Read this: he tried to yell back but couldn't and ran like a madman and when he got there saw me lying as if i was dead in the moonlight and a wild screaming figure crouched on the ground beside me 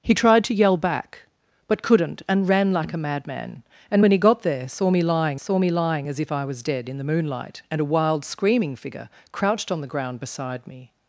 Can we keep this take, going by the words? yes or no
no